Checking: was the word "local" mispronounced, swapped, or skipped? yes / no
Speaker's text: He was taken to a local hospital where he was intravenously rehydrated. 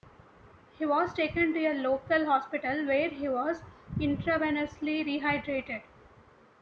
no